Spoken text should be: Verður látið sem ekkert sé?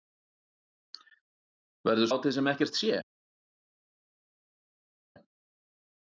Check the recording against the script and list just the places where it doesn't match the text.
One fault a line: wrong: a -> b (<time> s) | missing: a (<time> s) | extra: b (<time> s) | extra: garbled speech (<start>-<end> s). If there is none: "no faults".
no faults